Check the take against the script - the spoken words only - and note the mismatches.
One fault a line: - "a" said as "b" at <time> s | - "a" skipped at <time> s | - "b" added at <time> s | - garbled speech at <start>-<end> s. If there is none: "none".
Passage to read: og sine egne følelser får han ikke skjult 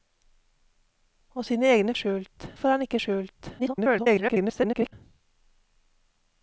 - "følelser" said as "skjult" at 1.9 s
- garbled speech at 3.6-4.9 s